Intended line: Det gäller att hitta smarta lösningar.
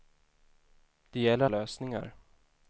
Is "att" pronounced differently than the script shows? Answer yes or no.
yes